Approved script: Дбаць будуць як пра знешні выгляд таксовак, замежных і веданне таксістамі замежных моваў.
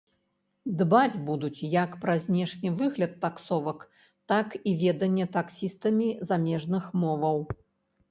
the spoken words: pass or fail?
fail